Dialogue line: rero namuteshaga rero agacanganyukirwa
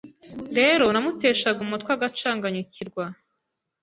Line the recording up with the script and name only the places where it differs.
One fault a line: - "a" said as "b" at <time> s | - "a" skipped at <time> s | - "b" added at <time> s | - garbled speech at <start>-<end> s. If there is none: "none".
- "rero" said as "umutwe" at 1.7 s